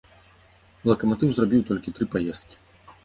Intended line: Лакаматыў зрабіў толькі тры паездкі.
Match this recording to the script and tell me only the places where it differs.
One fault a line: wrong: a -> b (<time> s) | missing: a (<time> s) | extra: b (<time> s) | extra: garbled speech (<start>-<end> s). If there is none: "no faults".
no faults